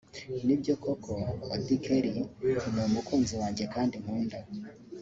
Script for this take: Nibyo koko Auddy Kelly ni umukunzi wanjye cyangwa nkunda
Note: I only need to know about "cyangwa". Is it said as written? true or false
false